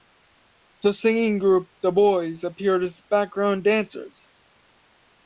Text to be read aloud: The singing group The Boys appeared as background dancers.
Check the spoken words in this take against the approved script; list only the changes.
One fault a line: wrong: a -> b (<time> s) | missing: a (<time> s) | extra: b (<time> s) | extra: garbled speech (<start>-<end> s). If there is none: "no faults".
no faults